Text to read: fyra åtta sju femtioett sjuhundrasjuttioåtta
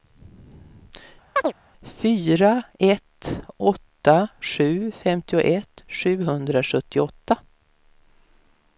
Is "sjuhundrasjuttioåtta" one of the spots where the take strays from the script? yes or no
no